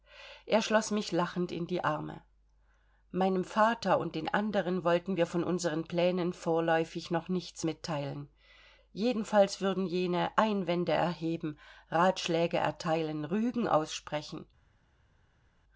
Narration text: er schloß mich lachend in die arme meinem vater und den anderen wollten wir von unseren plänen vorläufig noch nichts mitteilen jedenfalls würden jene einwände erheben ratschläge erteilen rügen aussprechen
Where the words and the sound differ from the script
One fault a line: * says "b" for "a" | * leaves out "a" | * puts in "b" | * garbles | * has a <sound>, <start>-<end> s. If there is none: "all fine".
all fine